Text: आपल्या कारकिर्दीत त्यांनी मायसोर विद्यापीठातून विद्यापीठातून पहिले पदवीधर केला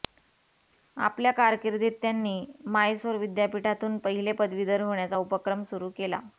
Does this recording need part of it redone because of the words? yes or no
yes